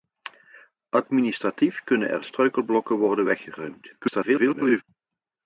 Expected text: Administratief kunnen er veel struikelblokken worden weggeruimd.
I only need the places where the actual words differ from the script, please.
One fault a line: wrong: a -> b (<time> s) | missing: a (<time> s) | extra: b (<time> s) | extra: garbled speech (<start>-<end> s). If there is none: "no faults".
missing: veel (2.2 s)
extra: garbled speech (4.0-4.8 s)